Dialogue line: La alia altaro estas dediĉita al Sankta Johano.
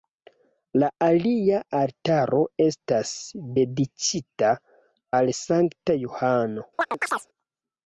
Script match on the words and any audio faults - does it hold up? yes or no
no